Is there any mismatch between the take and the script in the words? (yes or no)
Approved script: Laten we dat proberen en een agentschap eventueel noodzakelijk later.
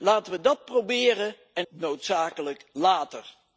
yes